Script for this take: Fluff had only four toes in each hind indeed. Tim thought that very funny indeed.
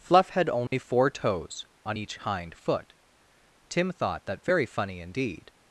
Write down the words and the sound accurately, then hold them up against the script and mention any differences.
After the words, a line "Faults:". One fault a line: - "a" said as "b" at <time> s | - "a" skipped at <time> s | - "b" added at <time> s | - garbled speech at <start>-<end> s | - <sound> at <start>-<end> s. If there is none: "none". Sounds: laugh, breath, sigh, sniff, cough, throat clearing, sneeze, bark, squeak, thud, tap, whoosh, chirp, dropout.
Fluff had only four toes on each hind foot. Tim thought that very funny indeed.
Faults:
- dropout at 0.7-0.7 s
- "in" said as "on" at 1.9 s
- "indeed" said as "foot" at 2.5 s